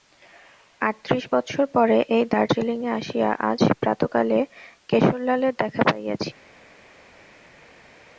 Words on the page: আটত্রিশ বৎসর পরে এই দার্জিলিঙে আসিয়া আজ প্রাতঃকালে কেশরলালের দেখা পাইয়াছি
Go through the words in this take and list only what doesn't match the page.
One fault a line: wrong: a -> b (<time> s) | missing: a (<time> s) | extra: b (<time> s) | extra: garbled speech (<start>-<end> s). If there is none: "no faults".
no faults